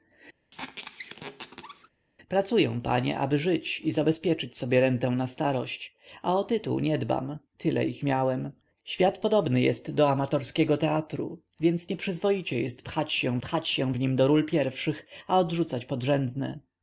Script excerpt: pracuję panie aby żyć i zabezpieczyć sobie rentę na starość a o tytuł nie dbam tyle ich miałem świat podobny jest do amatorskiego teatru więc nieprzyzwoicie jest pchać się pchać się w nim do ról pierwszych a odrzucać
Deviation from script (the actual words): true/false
false